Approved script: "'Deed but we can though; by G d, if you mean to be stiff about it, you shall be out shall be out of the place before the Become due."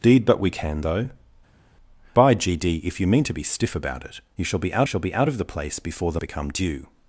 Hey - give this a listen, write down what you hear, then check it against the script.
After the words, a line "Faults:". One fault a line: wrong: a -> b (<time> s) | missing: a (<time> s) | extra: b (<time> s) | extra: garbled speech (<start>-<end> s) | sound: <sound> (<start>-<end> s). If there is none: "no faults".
"'Deed but we can though; by G d, if you mean to be stiff about it, you shall be out shall be out of the place before the Become due."
Faults:
no faults